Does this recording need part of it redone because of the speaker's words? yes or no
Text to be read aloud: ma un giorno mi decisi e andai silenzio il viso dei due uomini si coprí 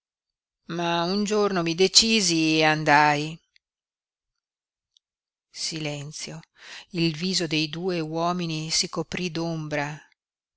no